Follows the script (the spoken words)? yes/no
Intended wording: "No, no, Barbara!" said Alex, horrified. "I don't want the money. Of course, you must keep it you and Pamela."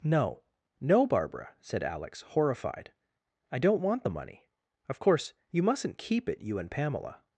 no